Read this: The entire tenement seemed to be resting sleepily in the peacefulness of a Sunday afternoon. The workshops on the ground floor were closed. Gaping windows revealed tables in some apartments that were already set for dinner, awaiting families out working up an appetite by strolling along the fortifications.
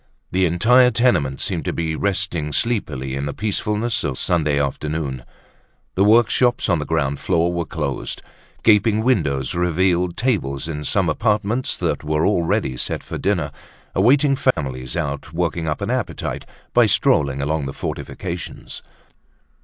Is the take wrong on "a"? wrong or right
wrong